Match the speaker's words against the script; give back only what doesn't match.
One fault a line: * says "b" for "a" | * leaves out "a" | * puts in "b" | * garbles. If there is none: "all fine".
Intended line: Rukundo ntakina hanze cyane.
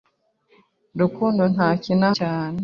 * leaves out "hanze"